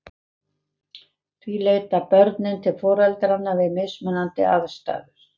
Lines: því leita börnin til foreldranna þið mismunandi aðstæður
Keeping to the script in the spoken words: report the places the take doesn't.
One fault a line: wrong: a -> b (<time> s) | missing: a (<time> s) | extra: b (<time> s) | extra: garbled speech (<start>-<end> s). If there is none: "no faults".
wrong: þið -> við (3.6 s)